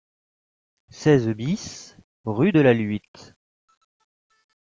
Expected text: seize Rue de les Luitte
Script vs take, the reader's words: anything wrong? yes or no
yes